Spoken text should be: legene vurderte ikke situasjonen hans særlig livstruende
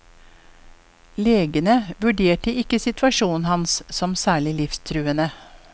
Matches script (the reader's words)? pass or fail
fail